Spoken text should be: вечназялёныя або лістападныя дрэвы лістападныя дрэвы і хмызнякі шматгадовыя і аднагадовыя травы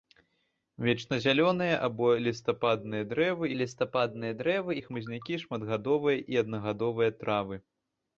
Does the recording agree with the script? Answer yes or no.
yes